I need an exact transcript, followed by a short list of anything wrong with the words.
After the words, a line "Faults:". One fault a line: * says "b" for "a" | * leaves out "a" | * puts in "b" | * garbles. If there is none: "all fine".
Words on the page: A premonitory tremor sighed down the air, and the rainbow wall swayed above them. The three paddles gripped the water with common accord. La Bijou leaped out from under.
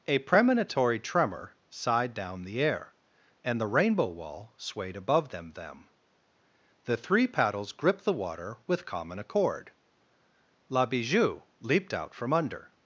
A premonitory tremor sighed down the air, and the rainbow wall swayed above them them. The three paddles gripped the water with common accord. La Bijou leaped out from under.
Faults:
* puts in "them"